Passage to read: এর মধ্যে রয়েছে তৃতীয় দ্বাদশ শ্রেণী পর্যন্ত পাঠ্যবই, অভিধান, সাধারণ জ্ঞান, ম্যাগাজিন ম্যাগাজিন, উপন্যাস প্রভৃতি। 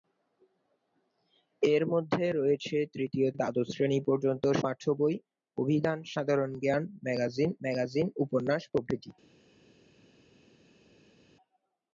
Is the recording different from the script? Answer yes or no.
no